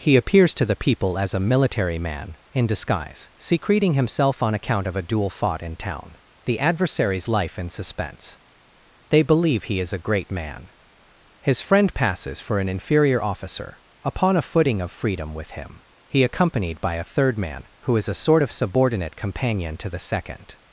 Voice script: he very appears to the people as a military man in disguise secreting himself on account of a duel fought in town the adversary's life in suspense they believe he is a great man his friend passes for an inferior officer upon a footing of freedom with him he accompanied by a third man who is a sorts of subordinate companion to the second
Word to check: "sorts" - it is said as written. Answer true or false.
false